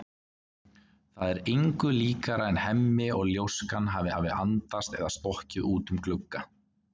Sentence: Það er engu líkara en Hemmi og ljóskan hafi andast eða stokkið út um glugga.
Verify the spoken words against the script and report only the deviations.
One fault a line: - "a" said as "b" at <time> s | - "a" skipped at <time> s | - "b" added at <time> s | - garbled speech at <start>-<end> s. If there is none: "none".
- "hafi" added at 4.2 s